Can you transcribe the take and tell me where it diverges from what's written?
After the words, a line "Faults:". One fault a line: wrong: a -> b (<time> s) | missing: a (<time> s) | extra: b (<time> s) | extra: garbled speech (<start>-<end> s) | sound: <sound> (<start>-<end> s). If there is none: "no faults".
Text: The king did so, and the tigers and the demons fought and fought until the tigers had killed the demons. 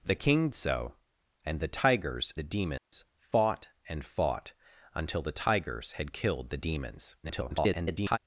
The king so, and the tigers the demons fought and fought until the tigers had killed the demons. [garbled]
Faults:
missing: did (0.5 s)
missing: and (2.3 s)
sound: dropout (2.8-2.9 s)
extra: garbled speech (7.2-8.2 s)